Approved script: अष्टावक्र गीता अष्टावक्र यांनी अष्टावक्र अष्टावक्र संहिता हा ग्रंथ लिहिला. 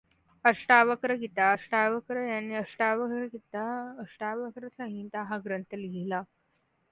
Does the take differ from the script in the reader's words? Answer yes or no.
yes